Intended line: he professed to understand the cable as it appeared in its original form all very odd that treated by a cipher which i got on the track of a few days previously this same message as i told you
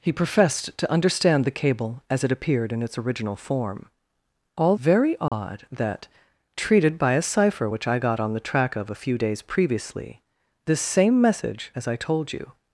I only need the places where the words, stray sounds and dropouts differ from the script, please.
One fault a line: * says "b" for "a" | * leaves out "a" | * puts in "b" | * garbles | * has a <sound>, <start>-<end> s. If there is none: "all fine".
* has a dropout, 5.3-5.3 s